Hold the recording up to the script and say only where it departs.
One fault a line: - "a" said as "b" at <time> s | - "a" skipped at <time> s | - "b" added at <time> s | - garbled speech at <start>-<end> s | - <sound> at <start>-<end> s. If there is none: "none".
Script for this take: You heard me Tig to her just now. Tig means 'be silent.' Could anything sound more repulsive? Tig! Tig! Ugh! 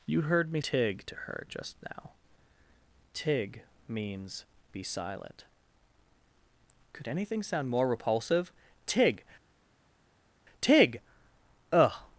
none